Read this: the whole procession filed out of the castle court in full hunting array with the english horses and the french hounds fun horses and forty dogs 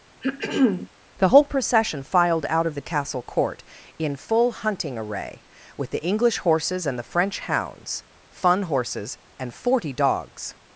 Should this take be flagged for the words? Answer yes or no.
no